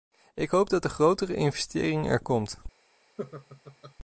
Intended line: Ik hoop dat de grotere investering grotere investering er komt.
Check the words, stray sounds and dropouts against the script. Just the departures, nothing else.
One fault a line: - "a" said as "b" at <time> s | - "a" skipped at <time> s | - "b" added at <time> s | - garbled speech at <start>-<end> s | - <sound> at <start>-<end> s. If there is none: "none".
- "grotere investering" skipped at 2.1 s
- laugh at 3.2-3.9 s